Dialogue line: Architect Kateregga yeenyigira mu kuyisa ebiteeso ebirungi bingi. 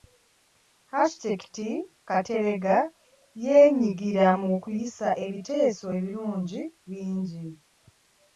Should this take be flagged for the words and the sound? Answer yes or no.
no